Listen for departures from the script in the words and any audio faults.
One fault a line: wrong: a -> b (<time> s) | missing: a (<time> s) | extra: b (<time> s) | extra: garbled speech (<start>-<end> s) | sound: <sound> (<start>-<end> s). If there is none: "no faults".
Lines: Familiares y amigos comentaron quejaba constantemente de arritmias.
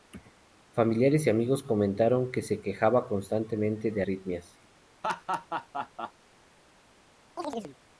extra: que se (2.3 s)
sound: laugh (5.0-6.1 s)
sound: chirp (7.4-7.8 s)